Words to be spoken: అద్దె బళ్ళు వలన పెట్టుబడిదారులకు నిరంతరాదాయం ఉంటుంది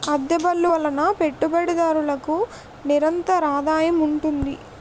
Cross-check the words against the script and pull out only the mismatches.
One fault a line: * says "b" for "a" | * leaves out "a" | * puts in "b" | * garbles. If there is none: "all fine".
all fine